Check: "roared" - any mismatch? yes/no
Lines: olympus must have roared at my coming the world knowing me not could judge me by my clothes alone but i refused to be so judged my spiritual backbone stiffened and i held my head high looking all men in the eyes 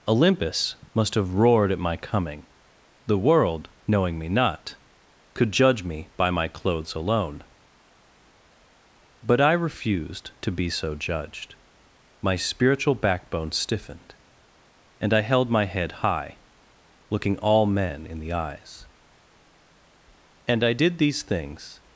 no